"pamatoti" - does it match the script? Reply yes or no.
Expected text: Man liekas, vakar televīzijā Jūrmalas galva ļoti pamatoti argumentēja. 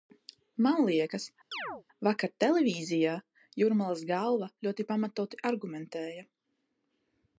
yes